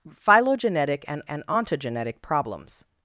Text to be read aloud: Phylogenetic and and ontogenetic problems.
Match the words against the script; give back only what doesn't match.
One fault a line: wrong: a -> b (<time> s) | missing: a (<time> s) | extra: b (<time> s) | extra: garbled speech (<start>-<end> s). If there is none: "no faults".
no faults